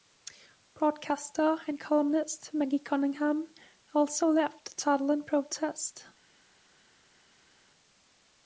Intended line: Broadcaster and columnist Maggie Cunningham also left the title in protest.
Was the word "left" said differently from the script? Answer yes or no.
no